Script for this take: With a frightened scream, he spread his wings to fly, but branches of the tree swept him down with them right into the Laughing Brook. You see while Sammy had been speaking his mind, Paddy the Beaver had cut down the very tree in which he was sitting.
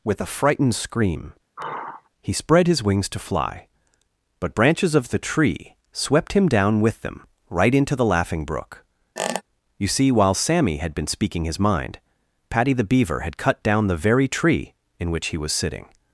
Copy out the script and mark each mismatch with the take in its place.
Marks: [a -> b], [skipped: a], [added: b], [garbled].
With a frightened scream, he spread his wings to fly, but branches of the tree swept him down with them right into the Laughing Brook. You see while Sammy had been speaking his mind, Paddy the Beaver had cut down the very tree in which he was sitting.